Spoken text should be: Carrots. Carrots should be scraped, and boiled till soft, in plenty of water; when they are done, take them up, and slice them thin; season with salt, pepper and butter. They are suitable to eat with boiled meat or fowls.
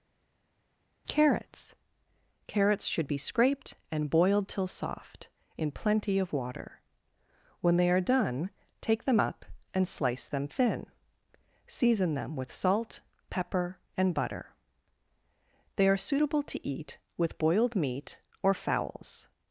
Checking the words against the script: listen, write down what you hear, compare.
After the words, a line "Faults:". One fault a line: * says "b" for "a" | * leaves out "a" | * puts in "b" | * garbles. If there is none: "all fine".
Carrots. Carrots should be scraped, and boiled till soft, in plenty of water; when they are done, take them up, and slice them thin; season them with salt, pepper and butter. They are suitable to eat with boiled meat or fowls.
Faults:
* puts in "them"